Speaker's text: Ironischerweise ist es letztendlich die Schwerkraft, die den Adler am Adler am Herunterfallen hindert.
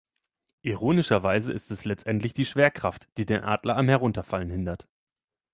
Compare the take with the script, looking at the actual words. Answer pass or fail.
fail